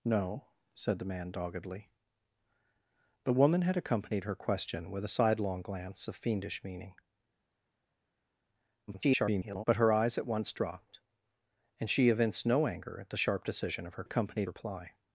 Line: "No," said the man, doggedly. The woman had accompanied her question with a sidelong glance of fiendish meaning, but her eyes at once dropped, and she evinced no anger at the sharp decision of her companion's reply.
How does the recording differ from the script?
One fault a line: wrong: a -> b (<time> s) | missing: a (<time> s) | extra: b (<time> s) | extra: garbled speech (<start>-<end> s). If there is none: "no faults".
extra: garbled speech (8.9-9.6 s)
wrong: companion's -> accompanied (14.0 s)